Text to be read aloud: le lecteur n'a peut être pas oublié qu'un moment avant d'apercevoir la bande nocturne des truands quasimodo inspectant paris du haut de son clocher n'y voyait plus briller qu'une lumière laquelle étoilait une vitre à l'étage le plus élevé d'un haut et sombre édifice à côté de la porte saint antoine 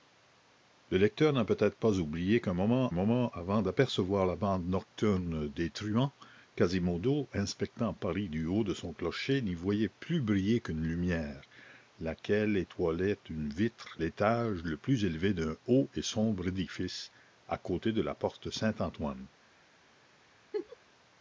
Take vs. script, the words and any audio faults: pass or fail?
fail